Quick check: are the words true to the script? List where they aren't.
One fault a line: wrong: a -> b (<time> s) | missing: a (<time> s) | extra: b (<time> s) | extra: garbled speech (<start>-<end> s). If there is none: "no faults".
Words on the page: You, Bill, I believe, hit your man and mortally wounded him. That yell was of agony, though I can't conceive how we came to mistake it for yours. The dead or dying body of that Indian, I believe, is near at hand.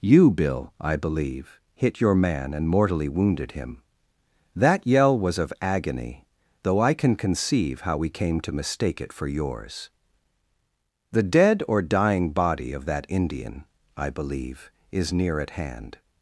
wrong: can't -> can (6.9 s)